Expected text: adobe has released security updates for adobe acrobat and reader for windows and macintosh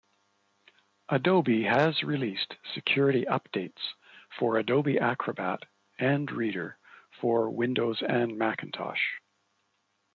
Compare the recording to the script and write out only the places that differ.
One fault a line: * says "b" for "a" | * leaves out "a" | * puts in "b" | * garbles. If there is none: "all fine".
all fine